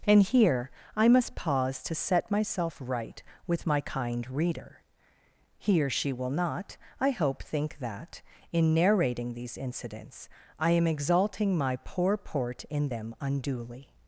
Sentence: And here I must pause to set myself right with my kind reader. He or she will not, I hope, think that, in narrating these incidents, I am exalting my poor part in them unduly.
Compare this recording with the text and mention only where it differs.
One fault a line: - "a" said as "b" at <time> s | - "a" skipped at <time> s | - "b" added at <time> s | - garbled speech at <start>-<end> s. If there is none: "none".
- "part" said as "port" at 12.2 s